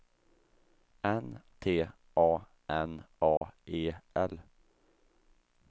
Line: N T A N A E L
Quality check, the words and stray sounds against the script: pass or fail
fail